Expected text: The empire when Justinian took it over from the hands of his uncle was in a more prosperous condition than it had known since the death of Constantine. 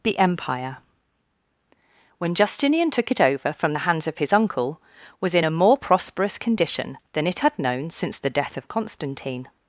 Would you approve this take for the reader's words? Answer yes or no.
yes